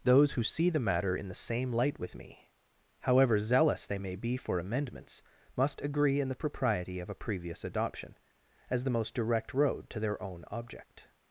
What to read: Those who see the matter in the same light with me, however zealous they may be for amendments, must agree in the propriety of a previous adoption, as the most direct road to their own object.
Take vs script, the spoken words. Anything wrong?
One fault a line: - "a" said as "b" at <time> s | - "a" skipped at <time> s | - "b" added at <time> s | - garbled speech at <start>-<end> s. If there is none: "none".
none